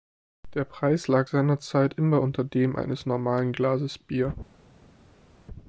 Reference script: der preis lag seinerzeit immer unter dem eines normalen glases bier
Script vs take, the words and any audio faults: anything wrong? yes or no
no